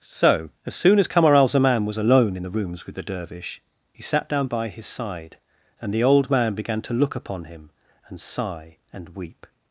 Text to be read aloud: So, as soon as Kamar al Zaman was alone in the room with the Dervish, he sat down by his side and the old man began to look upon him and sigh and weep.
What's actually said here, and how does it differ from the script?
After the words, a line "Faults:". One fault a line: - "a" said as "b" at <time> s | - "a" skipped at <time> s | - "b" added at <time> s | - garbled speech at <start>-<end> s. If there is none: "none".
So, as soon as Kamar al Zaman was alone in the rooms with the Dervish, he sat down by his side and the old man began to look upon him and sigh and weep.
Faults:
- "room" said as "rooms" at 2.5 s